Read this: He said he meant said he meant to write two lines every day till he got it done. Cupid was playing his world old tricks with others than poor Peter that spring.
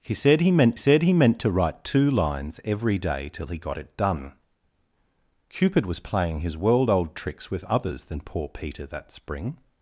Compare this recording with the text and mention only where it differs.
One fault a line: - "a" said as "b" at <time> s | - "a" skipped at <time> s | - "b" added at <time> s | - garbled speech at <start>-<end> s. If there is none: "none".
none